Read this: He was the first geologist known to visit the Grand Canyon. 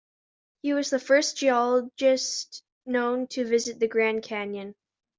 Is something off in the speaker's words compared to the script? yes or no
no